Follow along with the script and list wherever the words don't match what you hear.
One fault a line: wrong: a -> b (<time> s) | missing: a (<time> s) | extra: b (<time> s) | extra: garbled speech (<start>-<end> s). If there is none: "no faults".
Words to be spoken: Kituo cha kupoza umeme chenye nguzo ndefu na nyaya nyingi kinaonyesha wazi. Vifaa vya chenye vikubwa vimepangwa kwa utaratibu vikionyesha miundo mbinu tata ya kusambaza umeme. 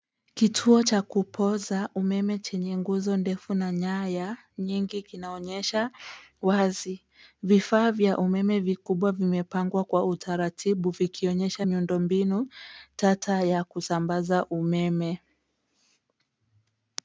wrong: chenye -> umeme (8.2 s)